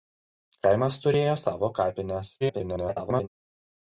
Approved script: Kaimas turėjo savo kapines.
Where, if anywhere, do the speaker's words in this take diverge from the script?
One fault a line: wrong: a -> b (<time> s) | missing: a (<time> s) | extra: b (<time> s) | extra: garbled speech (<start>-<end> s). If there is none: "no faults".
extra: garbled speech (2.4-3.3 s)